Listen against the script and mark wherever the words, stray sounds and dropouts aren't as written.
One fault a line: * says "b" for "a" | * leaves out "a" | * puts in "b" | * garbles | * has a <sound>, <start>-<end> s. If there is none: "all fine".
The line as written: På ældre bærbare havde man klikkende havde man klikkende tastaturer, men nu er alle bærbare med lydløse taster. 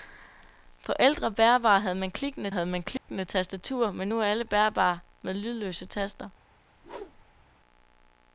* has a dropout, 3.0-3.1 s
* has a whoosh, 6.7-7.5 s